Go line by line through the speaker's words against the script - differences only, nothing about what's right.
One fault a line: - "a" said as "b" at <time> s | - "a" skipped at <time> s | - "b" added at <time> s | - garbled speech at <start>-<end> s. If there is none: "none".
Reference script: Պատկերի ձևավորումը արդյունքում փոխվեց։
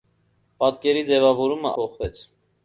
- "արդյունքում" skipped at 1.7 s